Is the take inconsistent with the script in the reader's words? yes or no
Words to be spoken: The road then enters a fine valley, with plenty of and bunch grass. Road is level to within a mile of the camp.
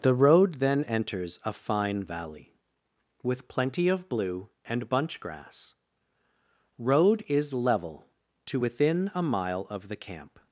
yes